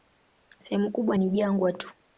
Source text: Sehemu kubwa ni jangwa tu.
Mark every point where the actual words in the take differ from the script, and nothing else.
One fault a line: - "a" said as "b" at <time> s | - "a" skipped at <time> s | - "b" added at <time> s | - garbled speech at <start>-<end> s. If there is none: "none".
none